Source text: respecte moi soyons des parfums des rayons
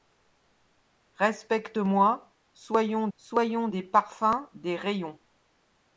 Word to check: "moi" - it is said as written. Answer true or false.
true